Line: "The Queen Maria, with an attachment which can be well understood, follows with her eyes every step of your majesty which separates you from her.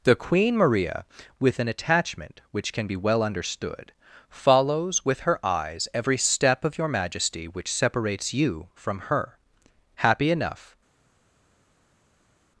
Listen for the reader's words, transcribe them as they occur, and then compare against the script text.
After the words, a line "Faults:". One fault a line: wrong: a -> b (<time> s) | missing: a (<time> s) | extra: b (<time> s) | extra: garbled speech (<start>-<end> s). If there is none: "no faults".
"The Queen Maria, with an attachment which can be well understood, follows with her eyes every step of your majesty which separates you from her. Happy enough
Faults:
extra: Happy enough (10.0 s)